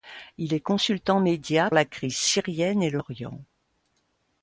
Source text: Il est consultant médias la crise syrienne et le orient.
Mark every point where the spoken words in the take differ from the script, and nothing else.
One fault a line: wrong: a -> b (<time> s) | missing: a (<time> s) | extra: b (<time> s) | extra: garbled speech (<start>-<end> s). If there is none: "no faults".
no faults